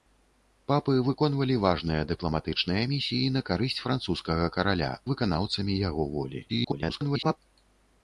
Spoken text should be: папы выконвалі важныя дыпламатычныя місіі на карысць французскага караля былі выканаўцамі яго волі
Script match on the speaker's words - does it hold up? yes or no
no